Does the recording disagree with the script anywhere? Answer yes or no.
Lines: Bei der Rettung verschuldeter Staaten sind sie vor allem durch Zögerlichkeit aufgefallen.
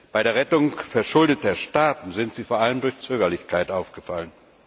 no